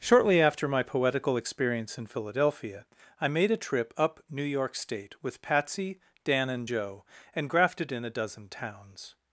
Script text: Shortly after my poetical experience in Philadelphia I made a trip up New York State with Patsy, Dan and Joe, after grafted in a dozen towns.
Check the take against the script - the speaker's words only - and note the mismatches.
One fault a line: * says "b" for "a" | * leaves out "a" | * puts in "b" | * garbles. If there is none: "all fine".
* says "and" for "after"